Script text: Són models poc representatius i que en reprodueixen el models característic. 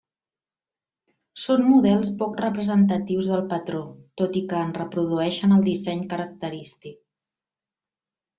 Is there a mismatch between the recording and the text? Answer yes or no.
yes